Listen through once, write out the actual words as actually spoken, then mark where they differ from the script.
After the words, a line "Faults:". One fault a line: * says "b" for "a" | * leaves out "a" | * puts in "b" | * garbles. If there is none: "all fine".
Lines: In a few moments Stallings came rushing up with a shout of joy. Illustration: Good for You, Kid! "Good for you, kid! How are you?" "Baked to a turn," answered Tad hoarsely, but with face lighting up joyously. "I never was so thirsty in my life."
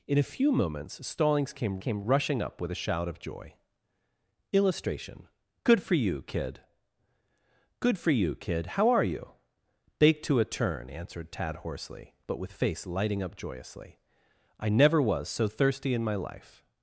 In a few moments Stallings came came rushing up with a shout of joy. Illustration: Good for You, Kid! "Good for you, kid! How are you?" "Baked to a turn," answered Tad hoarsely, but with face lighting up joyously. "I never was so thirsty in my life."
Faults:
* puts in "came"